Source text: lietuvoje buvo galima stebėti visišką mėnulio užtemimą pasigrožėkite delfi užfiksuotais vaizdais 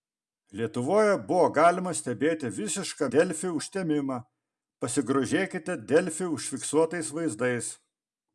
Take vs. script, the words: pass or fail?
fail